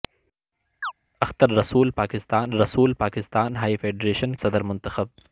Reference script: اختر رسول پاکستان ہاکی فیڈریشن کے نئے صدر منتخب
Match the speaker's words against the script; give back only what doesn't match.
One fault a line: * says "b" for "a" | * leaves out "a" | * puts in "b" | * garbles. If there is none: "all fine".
* puts in "رسول پاکستان"
* leaves out "کے نئے"